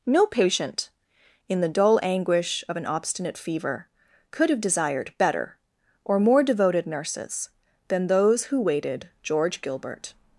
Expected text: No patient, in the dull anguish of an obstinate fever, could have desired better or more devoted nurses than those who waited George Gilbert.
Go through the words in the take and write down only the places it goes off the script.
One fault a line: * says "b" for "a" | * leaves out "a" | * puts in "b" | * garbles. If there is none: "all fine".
all fine